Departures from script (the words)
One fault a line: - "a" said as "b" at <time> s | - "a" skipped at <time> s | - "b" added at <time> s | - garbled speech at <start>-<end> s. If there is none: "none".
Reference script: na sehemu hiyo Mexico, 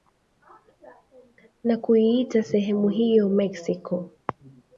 - "kuiita" added at 1.8 s